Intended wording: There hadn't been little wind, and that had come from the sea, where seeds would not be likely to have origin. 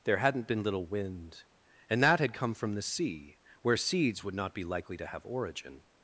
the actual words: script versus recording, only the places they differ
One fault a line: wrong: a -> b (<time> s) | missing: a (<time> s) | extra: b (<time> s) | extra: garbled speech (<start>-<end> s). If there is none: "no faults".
no faults